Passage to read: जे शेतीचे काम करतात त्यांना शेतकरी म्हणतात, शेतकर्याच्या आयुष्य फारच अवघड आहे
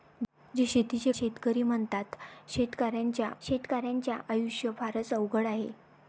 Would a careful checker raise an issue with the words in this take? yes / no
yes